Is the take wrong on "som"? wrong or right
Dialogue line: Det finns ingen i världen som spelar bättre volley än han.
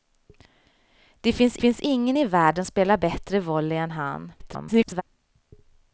wrong